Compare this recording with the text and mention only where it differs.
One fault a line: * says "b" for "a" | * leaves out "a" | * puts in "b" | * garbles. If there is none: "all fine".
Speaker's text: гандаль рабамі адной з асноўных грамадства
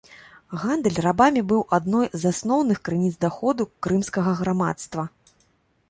* puts in "быў"
* puts in "крыніц даходу крымскага"